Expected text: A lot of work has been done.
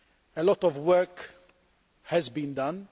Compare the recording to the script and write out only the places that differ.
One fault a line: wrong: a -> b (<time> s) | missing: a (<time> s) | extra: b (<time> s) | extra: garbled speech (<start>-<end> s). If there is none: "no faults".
no faults